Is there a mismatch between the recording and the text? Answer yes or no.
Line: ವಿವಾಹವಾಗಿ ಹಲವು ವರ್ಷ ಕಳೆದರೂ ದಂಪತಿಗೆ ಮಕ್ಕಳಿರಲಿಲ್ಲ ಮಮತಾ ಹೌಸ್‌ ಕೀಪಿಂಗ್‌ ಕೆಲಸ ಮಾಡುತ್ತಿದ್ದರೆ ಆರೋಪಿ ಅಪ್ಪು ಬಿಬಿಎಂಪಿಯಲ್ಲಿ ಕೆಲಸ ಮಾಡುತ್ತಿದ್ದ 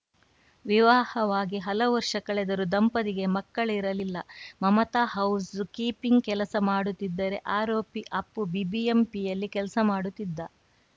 no